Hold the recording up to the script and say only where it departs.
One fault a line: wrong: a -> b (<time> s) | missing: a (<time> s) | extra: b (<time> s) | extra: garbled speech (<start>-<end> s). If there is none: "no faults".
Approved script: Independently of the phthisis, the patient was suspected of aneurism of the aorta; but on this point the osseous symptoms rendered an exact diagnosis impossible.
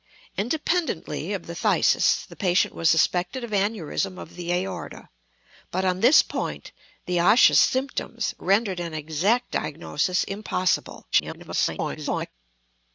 extra: garbled speech (11.1-12.3 s)